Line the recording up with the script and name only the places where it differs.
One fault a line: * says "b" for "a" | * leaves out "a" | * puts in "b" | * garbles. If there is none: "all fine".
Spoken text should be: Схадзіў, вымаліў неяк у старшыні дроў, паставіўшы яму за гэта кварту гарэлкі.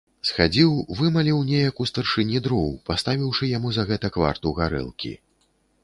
all fine